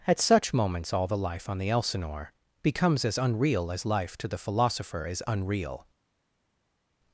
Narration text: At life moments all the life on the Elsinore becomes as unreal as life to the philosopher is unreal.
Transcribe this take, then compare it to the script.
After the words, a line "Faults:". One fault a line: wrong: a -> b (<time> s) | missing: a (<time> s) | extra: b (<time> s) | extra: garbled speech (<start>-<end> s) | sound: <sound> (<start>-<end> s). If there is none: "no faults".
At such moments all the life on the Elsinore becomes as unreal as life to the philosopher is unreal.
Faults:
wrong: life -> such (0.2 s)